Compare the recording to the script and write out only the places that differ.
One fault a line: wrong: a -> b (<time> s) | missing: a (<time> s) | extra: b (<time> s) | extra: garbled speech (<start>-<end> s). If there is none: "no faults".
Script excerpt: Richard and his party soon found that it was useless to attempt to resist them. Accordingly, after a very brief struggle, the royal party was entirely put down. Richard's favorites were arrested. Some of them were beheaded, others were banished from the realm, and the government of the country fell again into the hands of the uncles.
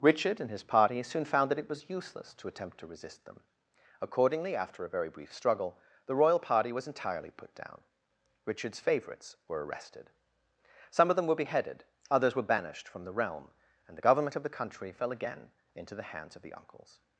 no faults